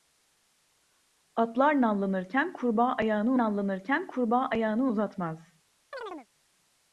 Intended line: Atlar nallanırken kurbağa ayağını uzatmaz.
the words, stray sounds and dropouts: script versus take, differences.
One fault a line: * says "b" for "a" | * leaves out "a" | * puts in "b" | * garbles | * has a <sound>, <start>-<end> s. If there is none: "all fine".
* puts in "nallanırken kurbağa ayağını"
* has a chirp, 5.9-6.3 s